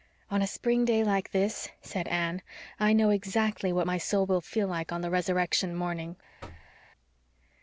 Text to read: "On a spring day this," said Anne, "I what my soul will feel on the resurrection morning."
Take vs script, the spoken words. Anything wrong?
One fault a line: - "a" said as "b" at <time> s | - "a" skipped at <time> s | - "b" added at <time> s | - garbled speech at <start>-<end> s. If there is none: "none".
- "like" added at 1.0 s
- "know exactly" added at 2.9 s
- "like" added at 4.7 s